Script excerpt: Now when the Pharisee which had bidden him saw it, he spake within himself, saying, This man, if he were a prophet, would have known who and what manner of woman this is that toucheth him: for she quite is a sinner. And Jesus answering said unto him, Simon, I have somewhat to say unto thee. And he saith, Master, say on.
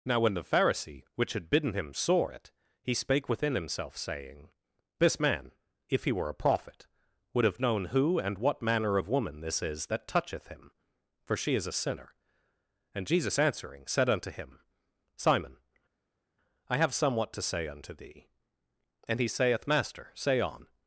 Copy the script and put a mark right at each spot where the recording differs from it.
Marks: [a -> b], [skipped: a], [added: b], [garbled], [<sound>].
Now when the Pharisee which had bidden him saw it, he spake within himself, saying, This man, if he were a prophet, would have known who and what manner of woman this is that toucheth him: for she [skipped: quite] is a sinner. And Jesus answering said unto him, Simon, I have somewhat to say unto thee. And he saith, Master, say on.